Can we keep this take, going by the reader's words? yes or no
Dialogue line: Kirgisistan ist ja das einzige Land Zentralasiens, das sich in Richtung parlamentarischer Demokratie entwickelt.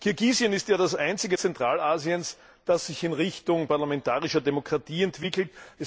no